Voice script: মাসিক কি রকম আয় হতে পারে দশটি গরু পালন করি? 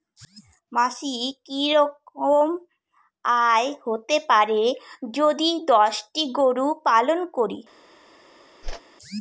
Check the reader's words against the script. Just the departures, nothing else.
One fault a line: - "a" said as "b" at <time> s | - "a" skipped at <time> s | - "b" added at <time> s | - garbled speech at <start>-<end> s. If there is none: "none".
- "যদি" added at 5.2 s